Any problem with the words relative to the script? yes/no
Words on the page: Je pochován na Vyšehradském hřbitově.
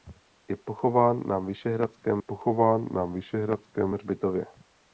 yes